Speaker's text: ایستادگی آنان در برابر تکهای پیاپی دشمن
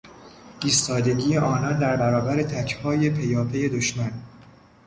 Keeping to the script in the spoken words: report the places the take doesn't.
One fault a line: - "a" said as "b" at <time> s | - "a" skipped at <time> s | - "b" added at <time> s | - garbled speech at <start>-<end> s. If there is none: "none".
none